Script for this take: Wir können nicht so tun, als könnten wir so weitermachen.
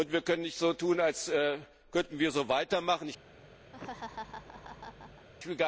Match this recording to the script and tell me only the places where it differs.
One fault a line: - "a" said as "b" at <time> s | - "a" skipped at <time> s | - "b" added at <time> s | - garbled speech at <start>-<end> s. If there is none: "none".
none